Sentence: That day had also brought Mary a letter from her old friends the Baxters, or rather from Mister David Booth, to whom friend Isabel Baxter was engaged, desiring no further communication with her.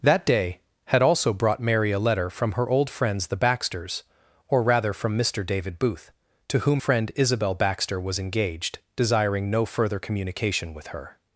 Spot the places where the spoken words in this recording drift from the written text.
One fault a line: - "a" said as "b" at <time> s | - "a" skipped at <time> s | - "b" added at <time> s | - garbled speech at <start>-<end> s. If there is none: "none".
none